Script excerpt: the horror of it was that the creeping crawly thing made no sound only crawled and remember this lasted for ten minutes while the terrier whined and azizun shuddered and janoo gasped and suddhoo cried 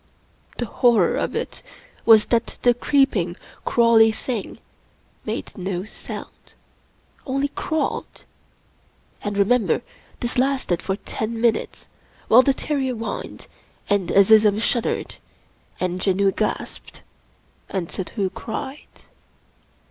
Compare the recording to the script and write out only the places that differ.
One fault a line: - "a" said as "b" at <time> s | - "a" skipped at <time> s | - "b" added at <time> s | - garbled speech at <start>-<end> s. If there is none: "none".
none